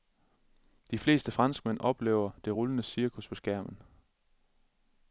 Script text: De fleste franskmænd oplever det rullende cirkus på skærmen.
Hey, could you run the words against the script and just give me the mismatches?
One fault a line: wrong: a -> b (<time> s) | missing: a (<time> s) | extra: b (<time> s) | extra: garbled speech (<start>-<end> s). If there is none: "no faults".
no faults